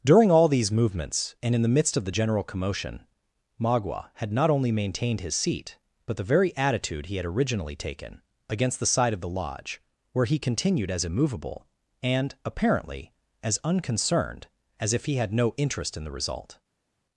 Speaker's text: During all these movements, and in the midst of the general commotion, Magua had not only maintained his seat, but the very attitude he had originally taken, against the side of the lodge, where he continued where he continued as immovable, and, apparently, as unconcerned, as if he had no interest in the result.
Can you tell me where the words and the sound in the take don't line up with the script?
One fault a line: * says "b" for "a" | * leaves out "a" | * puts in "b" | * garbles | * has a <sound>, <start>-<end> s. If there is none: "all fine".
* leaves out "where he continued"